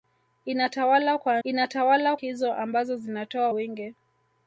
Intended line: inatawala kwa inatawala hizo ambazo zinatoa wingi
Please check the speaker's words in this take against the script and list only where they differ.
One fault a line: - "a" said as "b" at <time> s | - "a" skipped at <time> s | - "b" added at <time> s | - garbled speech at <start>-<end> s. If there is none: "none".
none